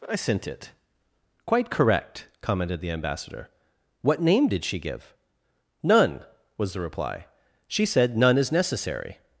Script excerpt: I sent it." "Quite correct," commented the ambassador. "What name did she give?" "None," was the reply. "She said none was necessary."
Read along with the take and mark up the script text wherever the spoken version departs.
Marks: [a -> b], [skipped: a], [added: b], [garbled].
I sent it." "Quite correct," commented the ambassador. "What name did she give?" "None," was the reply. "She said none [was -> is] necessary."